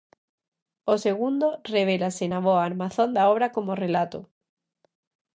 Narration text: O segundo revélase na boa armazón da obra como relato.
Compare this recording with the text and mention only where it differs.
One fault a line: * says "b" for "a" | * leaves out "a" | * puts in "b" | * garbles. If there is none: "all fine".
all fine